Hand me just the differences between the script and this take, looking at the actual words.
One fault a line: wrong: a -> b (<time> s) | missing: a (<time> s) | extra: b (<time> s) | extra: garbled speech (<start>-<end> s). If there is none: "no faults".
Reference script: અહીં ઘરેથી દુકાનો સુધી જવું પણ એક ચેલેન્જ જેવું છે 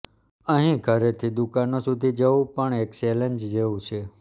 no faults